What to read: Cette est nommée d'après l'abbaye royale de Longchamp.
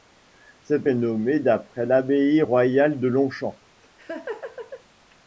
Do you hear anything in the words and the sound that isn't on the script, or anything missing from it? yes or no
yes